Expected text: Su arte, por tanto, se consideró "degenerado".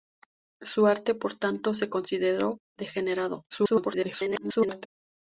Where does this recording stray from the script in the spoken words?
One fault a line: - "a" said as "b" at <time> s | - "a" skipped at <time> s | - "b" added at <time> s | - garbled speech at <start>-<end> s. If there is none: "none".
- garbled speech at 3.5-4.9 s